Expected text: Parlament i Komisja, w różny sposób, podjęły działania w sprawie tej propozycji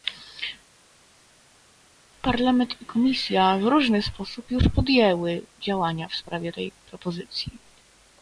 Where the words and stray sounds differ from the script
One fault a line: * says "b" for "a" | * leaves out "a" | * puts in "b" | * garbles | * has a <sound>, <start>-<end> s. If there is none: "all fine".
* puts in "już"